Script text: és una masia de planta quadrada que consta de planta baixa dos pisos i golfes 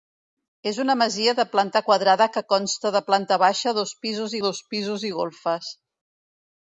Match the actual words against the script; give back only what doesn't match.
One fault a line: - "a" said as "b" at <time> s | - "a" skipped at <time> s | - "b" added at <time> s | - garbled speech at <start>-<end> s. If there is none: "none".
- "dos pisos" added at 4.5 s